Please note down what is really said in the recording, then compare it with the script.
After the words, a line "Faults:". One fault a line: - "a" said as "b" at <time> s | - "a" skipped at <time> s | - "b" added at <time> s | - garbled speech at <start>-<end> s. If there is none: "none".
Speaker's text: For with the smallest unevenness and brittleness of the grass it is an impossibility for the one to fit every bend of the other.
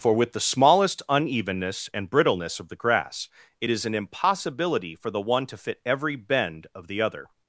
For with the smallest unevenness and brittleness of the grass it is an impossibility for the one to fit every bend of the other.
Faults:
none